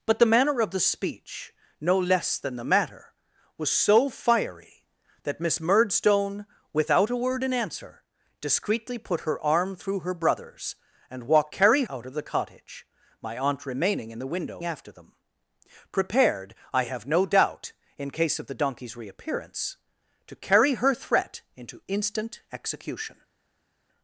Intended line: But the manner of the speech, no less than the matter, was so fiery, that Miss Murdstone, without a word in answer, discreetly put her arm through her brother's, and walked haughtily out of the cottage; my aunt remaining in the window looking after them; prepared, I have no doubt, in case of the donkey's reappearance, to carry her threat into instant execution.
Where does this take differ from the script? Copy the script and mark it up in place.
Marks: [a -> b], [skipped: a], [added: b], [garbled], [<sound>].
But the manner of the speech, no less than the matter, was so fiery, that Miss Murdstone, without a word in answer, discreetly put her arm through her brother's, and walked [haughtily -> carry] out of the cottage; my aunt remaining in the window [skipped: looking] after them; prepared, I have no doubt, in case of the donkey's reappearance, to carry her threat into instant execution.